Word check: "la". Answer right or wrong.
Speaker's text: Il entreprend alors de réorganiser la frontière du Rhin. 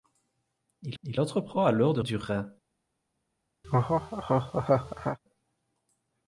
wrong